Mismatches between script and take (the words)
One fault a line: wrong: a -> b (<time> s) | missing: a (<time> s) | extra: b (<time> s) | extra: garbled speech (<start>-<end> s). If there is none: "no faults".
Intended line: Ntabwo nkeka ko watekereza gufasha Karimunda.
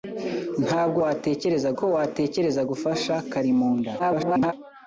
wrong: nkeka -> watekereza (1.0 s)
extra: garbled speech (4.0-4.5 s)